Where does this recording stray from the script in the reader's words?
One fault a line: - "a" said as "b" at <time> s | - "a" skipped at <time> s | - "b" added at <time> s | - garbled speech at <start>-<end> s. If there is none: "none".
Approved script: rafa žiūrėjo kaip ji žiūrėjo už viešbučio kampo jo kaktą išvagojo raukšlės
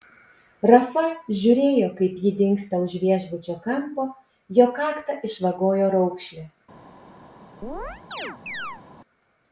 - "žiūrėjo" said as "dingsta" at 2.4 s